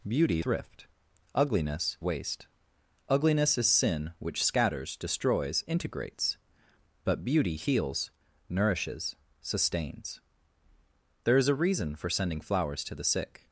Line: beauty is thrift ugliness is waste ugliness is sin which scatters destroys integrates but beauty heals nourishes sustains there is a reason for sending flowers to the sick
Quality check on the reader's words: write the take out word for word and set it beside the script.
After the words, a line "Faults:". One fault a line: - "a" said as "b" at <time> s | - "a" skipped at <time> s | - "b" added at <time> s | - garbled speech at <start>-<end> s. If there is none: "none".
beauty thrift ugliness waste ugliness is sin which scatters destroys integrates but beauty heals nourishes sustains there is a reason for sending flowers to the sick
Faults:
- "is" skipped at 0.4 s
- "is" skipped at 2.0 s